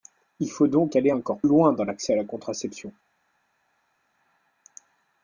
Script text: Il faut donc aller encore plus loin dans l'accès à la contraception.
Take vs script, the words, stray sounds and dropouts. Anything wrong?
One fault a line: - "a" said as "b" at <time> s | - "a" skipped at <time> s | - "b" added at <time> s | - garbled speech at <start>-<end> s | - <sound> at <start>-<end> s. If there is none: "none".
- "plus" skipped at 1.4 s